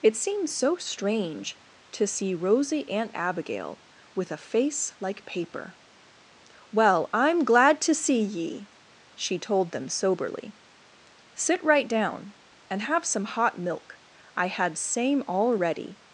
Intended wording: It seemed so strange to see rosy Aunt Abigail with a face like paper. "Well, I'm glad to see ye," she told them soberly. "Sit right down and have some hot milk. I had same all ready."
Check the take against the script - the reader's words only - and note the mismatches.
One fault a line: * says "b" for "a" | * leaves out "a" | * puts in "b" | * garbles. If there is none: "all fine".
all fine